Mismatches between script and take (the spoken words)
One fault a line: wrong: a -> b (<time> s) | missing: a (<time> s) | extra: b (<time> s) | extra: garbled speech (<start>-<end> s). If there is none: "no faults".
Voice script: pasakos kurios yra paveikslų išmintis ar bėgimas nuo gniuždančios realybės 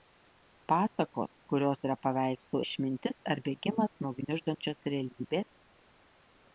no faults